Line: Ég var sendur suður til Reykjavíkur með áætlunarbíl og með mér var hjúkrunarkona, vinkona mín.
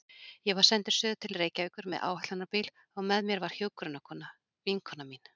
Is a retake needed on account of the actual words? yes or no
no